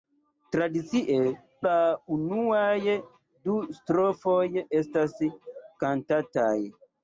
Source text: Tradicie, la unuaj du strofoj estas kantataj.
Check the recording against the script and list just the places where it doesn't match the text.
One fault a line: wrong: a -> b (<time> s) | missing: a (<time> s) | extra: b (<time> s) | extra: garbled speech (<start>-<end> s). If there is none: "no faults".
no faults